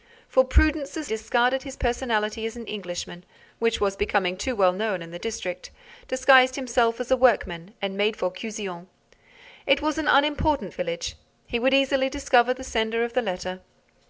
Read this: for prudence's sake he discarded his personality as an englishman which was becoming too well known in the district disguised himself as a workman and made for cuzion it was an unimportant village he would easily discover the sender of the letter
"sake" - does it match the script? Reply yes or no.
no